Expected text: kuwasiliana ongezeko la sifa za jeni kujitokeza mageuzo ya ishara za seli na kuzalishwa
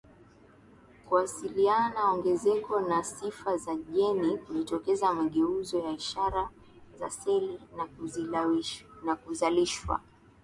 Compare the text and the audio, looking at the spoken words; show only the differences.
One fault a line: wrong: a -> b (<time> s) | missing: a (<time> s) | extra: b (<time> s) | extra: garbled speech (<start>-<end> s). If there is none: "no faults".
no faults